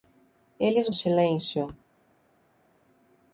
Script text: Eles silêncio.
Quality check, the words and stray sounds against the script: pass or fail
pass